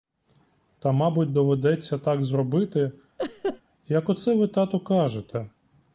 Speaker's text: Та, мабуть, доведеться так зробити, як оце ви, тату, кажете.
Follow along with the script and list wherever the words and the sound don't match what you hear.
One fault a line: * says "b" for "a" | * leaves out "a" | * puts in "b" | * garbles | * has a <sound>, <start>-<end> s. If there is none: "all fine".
* has a laugh, 3.2-3.6 s